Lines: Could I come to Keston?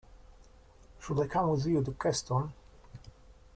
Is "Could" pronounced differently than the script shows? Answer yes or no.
yes